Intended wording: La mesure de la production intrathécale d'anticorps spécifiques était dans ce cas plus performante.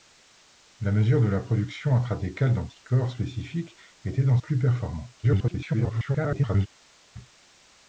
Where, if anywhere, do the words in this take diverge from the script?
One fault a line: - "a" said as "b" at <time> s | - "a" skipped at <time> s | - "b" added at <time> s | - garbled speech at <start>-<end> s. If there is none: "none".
- "ce cas" skipped at 4.4 s
- garbled speech at 5.2-6.7 s